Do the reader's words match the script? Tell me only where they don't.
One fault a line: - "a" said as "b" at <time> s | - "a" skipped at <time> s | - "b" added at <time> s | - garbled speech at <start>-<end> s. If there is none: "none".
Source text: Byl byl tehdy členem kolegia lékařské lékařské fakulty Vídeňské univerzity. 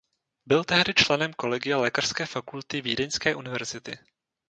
- "byl" skipped at 0.6 s
- "lékařské" skipped at 2.2 s